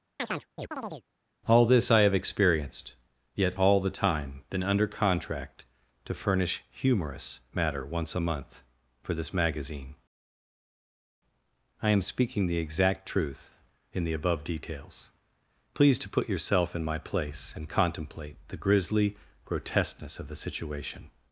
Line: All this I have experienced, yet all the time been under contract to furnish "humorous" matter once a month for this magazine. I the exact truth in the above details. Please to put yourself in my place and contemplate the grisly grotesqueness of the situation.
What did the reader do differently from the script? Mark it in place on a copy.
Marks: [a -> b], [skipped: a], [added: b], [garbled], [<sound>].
[chirp] All this I have experienced, yet all the time been under contract to furnish "humorous" matter once a month for this magazine. I [added: am speaking] the exact truth in the above details. Please to put yourself in my place and contemplate the grisly grotesqueness of the situation.